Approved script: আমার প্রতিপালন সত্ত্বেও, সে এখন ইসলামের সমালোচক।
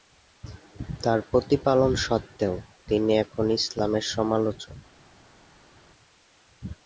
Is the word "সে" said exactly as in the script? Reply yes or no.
no